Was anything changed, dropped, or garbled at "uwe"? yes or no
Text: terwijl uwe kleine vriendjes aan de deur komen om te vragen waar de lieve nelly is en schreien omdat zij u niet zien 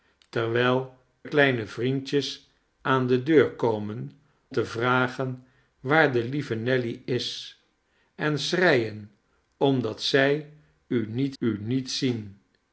yes